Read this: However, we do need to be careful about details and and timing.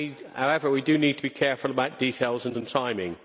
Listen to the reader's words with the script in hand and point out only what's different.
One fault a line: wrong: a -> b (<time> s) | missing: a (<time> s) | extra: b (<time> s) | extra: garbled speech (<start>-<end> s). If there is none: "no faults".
no faults